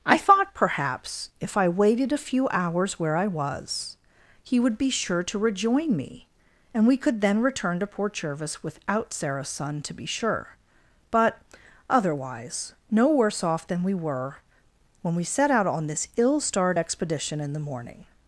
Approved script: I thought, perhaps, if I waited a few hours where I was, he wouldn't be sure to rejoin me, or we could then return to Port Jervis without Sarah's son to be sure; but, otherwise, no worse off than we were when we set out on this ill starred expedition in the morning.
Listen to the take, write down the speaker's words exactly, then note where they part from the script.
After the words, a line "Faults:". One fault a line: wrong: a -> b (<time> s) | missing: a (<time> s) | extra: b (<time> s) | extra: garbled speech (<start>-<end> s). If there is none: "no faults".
I thought, perhaps, if I waited a few hours where I was, he would be sure to rejoin me, and we could then return to Port Jervis without Sarah's son to be sure; but, otherwise, no worse off than we were when we set out on this ill starred expedition in the morning.
Faults:
wrong: wouldn't -> would (4.6 s)
wrong: or -> and (6.7 s)